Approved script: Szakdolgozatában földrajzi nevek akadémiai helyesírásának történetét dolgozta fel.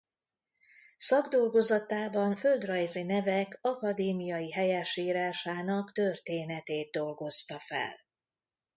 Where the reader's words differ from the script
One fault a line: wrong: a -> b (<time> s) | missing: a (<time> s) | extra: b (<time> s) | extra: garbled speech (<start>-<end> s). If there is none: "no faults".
no faults